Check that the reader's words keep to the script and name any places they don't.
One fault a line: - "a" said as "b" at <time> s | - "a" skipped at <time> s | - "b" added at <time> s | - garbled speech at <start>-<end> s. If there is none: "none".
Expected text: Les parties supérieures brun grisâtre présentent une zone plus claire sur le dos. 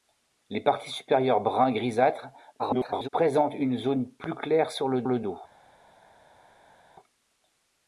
- garbled speech at 2.6-3.1 s
- "le" added at 5.1 s